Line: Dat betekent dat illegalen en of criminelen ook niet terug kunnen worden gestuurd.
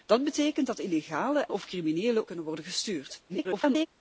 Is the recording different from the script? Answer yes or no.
yes